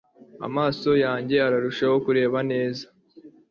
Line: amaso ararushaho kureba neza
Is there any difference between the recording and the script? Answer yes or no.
yes